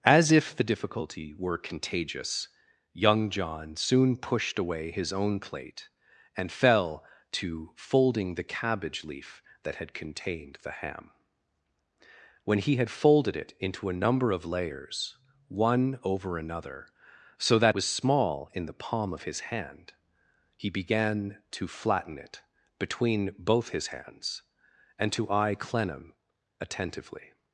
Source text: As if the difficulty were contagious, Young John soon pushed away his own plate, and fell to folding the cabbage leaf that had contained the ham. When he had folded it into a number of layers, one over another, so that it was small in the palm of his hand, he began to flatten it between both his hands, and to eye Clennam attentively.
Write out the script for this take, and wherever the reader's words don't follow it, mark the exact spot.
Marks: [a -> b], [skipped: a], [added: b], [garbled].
As if the difficulty were contagious, Young John soon pushed away his own plate, and fell to folding the cabbage leaf that had contained the ham. When he had folded it into a number of layers, one over another, so that [skipped: it] was small in the palm of his hand, he began to flatten it between both his hands, and to eye Clennam attentively.